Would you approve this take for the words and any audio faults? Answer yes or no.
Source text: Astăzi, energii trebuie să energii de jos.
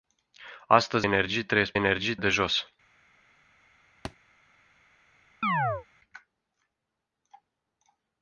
no